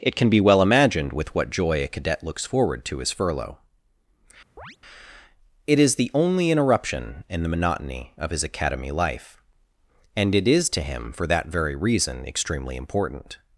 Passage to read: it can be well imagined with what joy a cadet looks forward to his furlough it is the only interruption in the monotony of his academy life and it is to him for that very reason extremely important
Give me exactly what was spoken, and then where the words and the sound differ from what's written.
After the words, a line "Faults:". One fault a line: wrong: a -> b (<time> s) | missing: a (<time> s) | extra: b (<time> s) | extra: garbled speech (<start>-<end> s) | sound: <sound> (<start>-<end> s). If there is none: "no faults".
it can be well imagined with what joy a cadet looks forward to his furlough it is the only interruption in the monotony of his academy life and it is to him for that very reason extremely important
Faults:
sound: chirp (4.6-4.8 s)